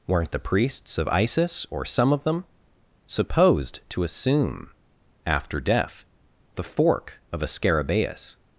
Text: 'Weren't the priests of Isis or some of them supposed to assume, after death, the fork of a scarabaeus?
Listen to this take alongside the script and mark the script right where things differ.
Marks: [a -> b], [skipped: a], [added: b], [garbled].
'Weren't the priests of Isis or some of them supposed to assume, after death, the fork of a scarabaeus?